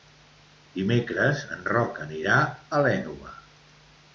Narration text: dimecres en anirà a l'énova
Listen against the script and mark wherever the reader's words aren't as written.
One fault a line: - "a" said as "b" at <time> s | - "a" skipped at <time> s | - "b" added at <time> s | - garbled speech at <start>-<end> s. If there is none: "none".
- "roc" added at 1.7 s